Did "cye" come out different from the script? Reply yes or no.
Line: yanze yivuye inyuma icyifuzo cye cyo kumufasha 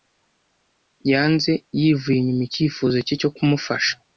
no